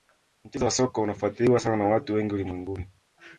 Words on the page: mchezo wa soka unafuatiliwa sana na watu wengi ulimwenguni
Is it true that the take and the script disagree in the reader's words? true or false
false